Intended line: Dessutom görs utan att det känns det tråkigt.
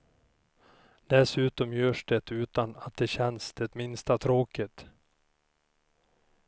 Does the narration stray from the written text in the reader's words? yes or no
yes